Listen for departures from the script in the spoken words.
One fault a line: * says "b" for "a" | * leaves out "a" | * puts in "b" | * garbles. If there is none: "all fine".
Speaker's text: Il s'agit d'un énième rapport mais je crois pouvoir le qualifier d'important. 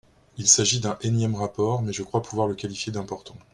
all fine